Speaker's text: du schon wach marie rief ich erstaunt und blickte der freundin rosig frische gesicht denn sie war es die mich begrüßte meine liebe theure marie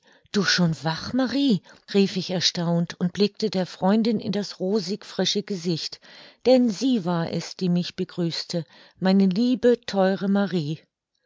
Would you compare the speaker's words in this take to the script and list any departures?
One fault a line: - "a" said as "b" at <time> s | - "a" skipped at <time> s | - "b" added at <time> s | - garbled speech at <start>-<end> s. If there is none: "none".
- "in das" added at 4.2 s